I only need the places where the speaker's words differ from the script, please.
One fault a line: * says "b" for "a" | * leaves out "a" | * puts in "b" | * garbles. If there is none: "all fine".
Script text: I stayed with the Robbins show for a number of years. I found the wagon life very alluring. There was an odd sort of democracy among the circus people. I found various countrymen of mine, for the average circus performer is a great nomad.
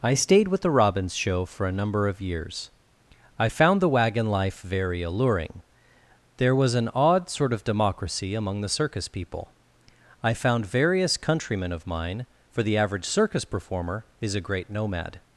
all fine